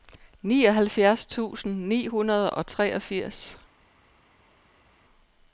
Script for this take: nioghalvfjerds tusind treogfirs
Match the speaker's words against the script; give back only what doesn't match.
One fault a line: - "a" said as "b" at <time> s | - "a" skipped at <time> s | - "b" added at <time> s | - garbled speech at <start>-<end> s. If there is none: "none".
- "ni hundrede og" added at 1.9 s